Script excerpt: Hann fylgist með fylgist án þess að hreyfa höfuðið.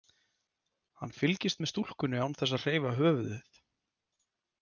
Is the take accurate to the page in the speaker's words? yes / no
no